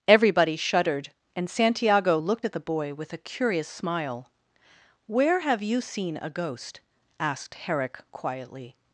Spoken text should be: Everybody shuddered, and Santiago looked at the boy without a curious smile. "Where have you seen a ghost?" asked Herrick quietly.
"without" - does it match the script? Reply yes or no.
no